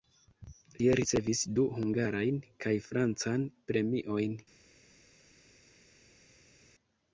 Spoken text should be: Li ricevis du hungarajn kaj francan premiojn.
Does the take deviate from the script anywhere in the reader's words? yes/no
no